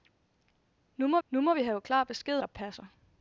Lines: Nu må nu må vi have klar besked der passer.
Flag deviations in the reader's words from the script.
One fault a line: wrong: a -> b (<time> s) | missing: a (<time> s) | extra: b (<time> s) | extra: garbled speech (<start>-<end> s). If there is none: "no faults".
no faults